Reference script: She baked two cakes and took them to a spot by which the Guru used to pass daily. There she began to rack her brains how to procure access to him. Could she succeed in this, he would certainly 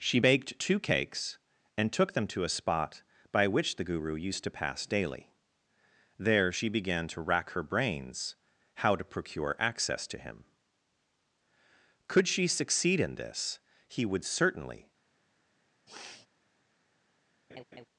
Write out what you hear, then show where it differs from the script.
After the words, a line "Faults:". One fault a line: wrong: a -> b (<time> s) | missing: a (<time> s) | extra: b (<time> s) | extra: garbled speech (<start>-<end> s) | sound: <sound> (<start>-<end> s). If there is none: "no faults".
She baked two cakes and took them to a spot by which the Guru used to pass daily. There she began to rack her brains how to procure access to him. Could she succeed in this, he would certainly
Faults:
sound: sniff (15.9-16.3 s)
sound: laugh (17.5-17.9 s)